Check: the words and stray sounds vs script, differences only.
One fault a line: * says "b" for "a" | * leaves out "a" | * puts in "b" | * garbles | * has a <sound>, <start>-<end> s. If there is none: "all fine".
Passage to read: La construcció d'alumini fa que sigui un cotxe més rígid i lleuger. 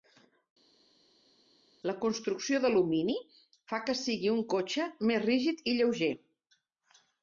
all fine